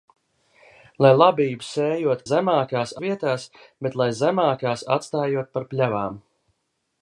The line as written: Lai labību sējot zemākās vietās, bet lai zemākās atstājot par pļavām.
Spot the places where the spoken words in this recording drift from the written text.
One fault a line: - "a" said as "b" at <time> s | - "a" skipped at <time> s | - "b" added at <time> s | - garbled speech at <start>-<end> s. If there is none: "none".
none